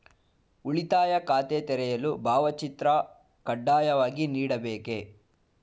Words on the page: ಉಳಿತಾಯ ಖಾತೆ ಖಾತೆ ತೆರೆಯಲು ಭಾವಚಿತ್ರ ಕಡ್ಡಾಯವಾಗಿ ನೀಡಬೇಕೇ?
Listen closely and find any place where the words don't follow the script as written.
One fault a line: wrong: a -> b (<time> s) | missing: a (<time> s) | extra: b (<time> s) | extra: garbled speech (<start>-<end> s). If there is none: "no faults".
missing: ಖಾತೆ (1.6 s)